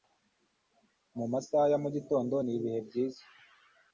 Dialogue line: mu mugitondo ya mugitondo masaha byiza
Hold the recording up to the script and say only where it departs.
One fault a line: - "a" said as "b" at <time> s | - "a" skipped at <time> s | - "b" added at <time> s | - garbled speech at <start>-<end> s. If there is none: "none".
- "mugitondo" said as "masaha" at 1.3 s
- "masaha" said as "n'ibihe" at 2.4 s